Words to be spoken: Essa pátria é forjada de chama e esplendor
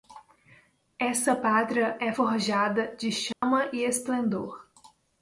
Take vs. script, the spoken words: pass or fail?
pass